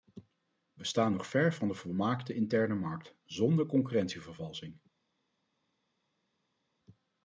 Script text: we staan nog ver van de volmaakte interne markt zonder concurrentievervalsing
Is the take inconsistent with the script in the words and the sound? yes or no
no